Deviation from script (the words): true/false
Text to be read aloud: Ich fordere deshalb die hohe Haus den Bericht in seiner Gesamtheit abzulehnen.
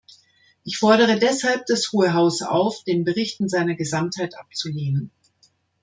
true